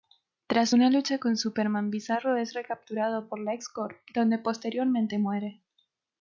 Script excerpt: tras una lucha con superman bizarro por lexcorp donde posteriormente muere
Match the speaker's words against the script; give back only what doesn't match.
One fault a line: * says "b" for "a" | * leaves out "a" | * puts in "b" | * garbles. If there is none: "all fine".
* puts in "es recapturado"